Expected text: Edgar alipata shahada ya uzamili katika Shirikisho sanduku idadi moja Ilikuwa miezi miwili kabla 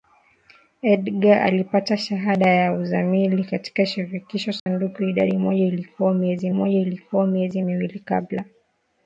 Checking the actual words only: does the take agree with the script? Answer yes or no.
no